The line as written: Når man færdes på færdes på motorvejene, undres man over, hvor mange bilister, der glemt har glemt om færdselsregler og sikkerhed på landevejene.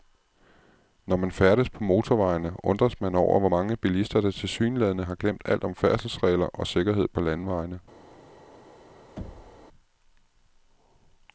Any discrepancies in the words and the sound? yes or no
yes